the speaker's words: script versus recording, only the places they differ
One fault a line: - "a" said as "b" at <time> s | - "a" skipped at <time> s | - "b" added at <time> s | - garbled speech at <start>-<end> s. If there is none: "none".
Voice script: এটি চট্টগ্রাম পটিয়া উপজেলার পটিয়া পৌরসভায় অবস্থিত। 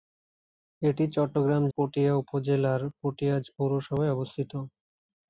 none